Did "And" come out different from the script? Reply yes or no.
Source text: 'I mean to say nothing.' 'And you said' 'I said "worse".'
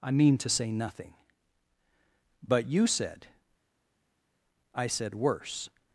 yes